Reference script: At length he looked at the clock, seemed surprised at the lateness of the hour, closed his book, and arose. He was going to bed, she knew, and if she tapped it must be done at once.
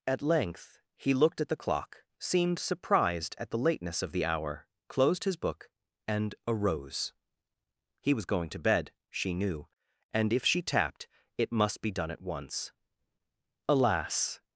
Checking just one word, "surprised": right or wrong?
right